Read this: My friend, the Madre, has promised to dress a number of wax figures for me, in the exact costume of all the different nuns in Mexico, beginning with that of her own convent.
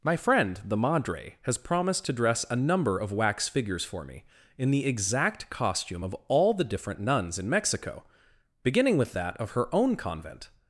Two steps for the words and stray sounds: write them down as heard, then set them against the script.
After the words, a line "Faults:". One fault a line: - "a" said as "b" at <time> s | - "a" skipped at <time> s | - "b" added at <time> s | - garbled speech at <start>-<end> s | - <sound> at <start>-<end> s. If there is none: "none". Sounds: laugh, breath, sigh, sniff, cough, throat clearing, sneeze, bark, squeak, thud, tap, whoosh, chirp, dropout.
My friend, the Madre, has promised to dress a number of wax figures for me, in the exact costume of all the different nuns in Mexico, beginning with that of her own convent.
Faults:
none